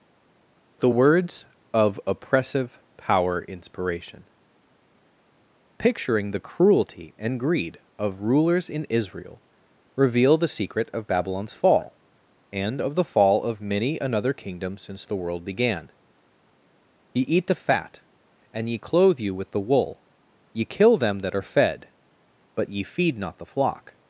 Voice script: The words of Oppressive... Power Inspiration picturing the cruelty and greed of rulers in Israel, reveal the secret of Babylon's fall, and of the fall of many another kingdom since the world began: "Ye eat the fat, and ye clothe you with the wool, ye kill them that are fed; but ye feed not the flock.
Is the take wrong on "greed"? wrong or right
right